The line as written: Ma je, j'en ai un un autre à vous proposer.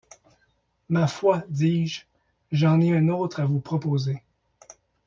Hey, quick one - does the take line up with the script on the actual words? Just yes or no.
no